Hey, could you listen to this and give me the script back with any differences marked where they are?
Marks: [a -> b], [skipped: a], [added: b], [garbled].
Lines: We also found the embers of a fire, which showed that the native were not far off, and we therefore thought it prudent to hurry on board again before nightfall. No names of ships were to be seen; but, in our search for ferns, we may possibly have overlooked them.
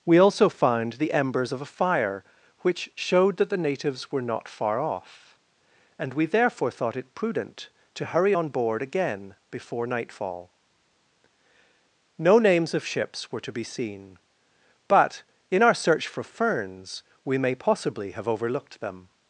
We also found the embers of a fire, which showed that the [native -> natives] were not far off, and we therefore thought it prudent to hurry on board again before nightfall. No names of ships were to be seen; but, in our search for ferns, we may possibly have overlooked them.